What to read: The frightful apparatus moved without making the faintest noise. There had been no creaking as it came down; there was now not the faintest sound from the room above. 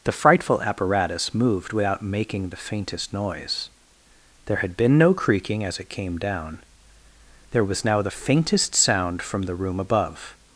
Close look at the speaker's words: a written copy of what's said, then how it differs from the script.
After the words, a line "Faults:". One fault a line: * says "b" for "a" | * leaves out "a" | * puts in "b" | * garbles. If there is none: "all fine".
The frightful apparatus moved without making the faintest noise. There had been no creaking as it came down; there was now the faintest sound from the room above.
Faults:
* leaves out "not"